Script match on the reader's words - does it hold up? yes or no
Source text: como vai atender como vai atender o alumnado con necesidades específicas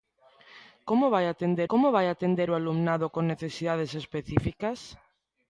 yes